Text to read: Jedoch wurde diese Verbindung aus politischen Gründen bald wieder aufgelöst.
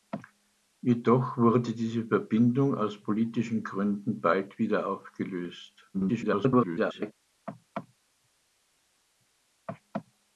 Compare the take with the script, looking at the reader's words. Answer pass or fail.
fail